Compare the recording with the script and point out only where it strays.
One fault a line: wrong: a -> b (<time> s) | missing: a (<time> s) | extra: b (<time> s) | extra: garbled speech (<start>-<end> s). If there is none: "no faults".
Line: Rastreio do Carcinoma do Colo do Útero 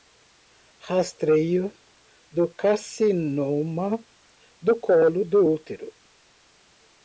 no faults